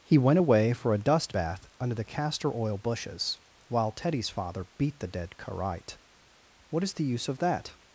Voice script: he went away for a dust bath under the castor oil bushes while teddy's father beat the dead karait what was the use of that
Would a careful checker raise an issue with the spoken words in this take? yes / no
yes